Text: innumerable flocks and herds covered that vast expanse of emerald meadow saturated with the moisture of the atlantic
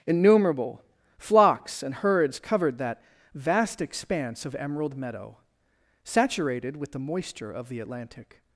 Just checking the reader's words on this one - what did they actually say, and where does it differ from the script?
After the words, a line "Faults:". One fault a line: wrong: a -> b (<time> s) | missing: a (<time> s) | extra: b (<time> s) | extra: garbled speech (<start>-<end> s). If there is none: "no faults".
innumerable flocks and herds covered that vast expanse of emerald meadow saturated with the moisture of the atlantic
Faults:
no faults